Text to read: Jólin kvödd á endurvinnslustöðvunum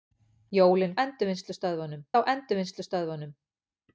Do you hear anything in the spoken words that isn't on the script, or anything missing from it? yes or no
yes